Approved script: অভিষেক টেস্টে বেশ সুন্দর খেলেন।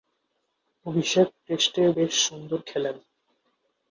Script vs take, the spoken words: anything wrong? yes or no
no